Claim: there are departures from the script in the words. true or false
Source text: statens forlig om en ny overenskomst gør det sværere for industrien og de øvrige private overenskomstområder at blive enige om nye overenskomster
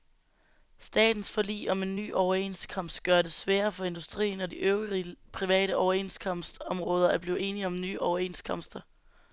false